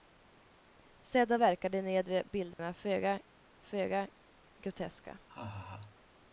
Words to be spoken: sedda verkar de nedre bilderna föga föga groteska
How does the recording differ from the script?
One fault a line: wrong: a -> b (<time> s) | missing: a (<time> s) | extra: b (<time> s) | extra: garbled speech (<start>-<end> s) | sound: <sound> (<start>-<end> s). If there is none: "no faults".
sound: dropout (2.5-2.6 s)
sound: laugh (5.3-6.0 s)